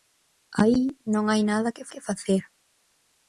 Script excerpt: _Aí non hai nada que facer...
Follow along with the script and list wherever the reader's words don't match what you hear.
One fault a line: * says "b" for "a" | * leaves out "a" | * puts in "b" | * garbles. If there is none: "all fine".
* puts in "que"